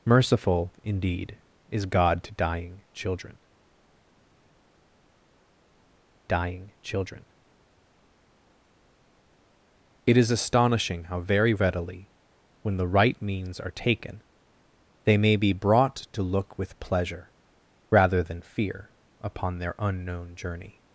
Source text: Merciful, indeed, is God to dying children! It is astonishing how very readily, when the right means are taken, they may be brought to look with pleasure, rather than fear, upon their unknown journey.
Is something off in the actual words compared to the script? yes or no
yes